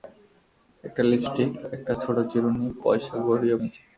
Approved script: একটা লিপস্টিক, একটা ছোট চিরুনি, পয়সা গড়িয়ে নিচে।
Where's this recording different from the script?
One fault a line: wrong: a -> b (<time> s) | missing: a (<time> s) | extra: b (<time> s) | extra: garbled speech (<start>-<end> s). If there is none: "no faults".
no faults